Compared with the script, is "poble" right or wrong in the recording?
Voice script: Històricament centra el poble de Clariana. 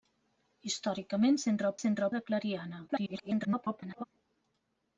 wrong